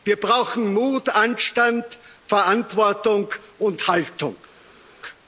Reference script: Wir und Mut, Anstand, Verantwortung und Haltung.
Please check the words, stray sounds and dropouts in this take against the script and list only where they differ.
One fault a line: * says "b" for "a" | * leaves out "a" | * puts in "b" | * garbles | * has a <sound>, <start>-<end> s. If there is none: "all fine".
* says "brauchen" for "und"